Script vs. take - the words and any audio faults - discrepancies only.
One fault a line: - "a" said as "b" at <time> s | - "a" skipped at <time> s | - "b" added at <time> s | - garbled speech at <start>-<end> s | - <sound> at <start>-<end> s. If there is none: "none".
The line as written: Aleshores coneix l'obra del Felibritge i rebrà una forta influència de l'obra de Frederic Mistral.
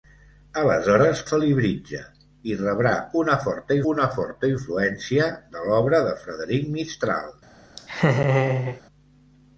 - "coneix l'obra del" skipped at 1.2 s
- "una forta" added at 3.9 s
- laugh at 7.8-8.8 s